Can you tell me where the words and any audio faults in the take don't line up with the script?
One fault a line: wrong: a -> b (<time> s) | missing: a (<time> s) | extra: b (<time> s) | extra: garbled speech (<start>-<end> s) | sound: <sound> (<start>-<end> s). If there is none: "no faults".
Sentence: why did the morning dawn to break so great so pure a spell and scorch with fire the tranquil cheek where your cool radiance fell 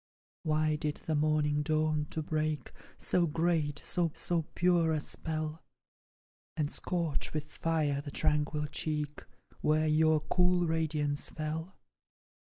extra: so (4.2 s)